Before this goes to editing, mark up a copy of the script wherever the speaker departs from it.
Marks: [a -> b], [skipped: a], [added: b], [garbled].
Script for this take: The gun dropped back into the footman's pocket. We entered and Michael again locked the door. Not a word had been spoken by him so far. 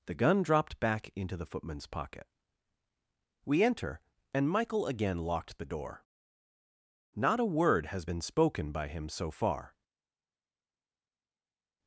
The gun dropped back into the footman's pocket. We [entered -> enter] and Michael again locked the door. Not a word [had -> has] been spoken by him so far.